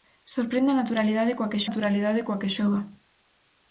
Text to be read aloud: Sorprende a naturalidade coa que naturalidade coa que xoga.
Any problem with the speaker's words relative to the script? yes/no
no